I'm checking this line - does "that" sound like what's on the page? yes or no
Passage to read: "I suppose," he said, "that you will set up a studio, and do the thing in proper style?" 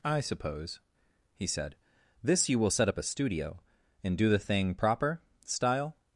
no